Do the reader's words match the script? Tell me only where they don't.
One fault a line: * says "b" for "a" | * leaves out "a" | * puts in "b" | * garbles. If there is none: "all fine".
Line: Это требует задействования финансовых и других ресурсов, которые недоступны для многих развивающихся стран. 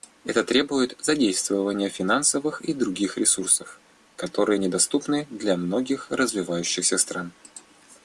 all fine